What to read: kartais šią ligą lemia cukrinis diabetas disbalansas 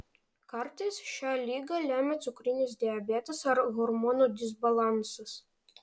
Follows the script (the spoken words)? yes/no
no